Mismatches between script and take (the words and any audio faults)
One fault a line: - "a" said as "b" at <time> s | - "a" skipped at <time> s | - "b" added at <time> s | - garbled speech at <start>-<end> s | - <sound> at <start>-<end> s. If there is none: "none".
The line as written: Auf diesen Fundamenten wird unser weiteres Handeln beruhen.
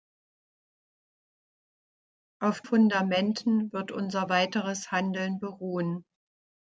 - "diesen" skipped at 2.6 s